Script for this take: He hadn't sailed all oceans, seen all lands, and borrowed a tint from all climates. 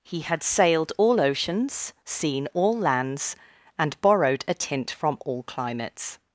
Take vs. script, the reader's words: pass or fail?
fail